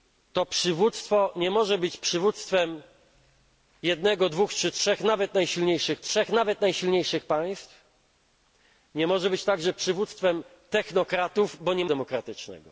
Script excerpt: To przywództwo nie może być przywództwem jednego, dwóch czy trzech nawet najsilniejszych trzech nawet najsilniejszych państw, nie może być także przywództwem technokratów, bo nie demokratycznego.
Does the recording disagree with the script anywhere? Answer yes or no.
no